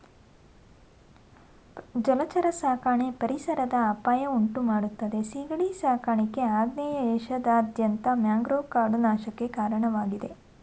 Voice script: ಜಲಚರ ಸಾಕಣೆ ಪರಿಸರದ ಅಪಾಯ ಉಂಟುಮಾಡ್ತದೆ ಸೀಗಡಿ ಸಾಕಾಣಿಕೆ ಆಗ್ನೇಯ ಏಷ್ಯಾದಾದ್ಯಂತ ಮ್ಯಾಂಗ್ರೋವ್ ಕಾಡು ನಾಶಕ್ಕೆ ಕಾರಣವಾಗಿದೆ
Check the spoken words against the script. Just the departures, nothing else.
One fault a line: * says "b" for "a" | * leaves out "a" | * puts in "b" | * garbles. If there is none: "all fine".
all fine